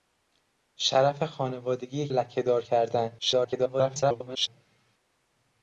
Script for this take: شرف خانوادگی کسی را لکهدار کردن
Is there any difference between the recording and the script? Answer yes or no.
yes